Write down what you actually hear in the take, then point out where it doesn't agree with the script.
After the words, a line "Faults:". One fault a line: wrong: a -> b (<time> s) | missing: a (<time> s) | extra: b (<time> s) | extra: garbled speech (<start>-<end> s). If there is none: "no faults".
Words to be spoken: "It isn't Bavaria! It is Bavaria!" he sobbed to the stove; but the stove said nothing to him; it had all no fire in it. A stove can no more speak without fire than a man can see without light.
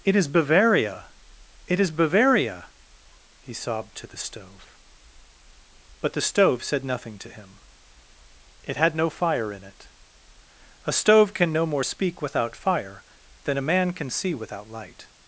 "It is Bavaria! It is Bavaria!" he sobbed to the stove; but the stove said nothing to him; it had no fire in it. A stove can no more speak without fire than a man can see without light.
Faults:
wrong: isn't -> is (0.1 s)
missing: all (8.9 s)